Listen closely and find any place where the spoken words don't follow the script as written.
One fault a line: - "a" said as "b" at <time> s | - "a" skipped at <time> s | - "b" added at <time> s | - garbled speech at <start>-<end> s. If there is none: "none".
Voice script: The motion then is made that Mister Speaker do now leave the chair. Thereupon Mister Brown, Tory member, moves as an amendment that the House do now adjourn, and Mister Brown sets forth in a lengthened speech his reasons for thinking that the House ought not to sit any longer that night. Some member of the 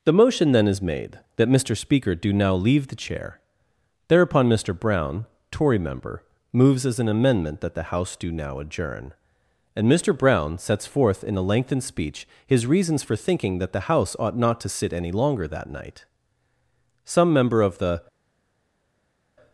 none